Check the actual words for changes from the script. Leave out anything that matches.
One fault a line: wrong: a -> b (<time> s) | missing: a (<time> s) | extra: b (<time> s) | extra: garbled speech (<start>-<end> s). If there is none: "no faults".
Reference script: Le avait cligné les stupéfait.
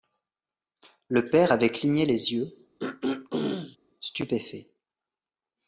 extra: père (1.3 s)
extra: yeux (2.3 s)